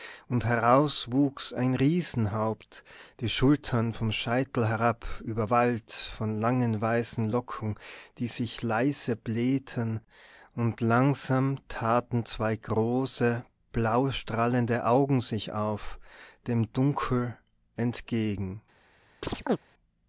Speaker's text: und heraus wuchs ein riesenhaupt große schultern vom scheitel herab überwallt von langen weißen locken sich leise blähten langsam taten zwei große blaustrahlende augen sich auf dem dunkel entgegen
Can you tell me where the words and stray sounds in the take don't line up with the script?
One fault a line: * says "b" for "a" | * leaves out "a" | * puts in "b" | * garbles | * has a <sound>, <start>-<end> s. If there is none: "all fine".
* says "die" for "große"
* puts in "die"
* puts in "und"
* has a chirp, 19.2-19.6 s